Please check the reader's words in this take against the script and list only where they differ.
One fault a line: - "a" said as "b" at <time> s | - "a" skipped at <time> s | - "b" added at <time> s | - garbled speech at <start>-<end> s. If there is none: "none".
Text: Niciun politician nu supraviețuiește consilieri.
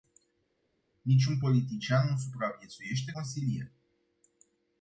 none